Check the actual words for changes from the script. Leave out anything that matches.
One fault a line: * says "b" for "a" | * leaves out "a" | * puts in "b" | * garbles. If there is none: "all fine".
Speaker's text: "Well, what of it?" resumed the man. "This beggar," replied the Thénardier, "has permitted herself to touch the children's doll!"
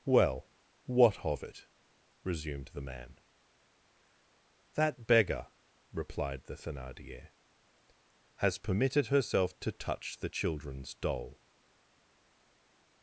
* says "That" for "This"